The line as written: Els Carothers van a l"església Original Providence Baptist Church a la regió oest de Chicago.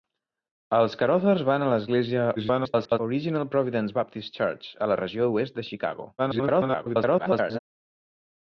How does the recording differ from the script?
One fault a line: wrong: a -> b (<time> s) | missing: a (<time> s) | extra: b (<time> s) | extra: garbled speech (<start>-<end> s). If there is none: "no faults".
extra: garbled speech (2.4-3.0 s)
extra: garbled speech (6.2-7.6 s)